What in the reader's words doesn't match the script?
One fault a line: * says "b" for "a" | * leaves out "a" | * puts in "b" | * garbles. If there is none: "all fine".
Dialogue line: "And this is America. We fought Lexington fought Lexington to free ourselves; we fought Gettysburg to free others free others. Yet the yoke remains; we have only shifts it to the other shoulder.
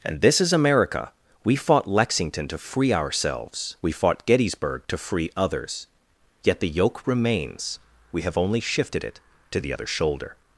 * leaves out "fought Lexington"
* leaves out "free others"
* says "shifted" for "shifts"